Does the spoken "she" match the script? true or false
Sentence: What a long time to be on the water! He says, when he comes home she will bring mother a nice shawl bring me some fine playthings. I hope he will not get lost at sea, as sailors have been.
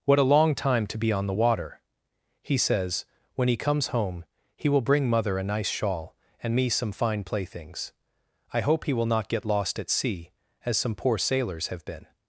false